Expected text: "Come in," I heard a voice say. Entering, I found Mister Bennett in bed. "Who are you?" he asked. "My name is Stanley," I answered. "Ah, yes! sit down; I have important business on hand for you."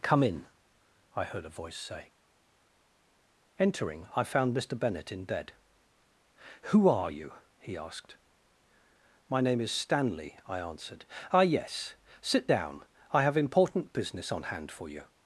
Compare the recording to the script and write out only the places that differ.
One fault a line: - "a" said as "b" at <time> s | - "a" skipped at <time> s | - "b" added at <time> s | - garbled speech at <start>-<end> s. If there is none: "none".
none